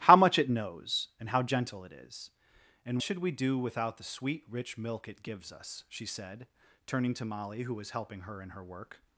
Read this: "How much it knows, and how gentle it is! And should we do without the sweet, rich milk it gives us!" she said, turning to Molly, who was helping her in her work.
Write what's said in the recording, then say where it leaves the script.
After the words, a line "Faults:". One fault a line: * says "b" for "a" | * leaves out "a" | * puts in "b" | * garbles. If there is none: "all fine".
"How much it knows, and how gentle it is! And should we do without the sweet, rich milk it gives us!" she said, turning to Molly, who was helping her in her work.
Faults:
all fine